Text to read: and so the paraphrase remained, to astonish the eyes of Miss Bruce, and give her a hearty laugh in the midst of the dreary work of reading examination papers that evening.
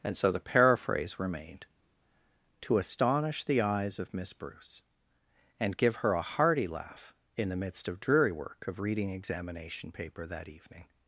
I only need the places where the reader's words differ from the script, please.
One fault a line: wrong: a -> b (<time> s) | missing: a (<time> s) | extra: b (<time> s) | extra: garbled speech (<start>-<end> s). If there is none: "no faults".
missing: the (8.0 s)
wrong: papers -> paper (9.9 s)